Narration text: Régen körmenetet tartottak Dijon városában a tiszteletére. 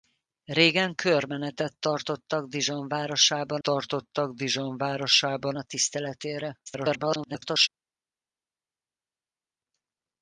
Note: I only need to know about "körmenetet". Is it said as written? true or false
true